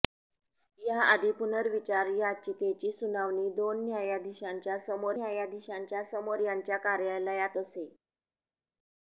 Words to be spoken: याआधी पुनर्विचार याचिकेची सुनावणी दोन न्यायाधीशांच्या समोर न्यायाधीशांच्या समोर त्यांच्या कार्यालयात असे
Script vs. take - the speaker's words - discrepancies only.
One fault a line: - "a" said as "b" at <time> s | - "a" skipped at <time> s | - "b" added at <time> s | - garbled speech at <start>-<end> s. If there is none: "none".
none